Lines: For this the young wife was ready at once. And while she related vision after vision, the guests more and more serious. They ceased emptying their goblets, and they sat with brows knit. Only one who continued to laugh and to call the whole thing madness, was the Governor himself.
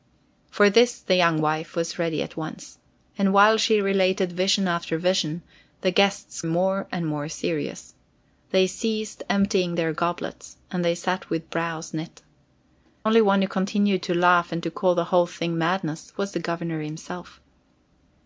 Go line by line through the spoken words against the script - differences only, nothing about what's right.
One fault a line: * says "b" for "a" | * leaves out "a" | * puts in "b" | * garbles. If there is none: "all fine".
all fine